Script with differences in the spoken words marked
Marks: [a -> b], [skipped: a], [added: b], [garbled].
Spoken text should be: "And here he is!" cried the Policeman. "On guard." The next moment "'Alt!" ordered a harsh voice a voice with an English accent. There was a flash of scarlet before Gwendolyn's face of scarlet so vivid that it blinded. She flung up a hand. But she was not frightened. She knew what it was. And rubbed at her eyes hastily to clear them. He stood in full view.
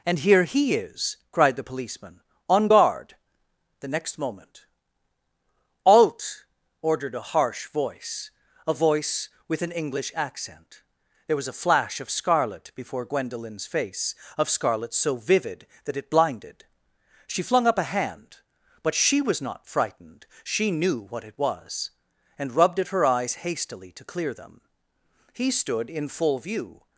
"And here he is!" cried the Policeman. "On guard." The next moment "'Alt!" ordered a harsh voice a voice with an English accent. There was a flash of scarlet before Gwendolyn's face of scarlet so vivid that it blinded. She flung up a hand. But she was not frightened. She knew what it was. And rubbed at her eyes hastily to clear them. He stood in full view.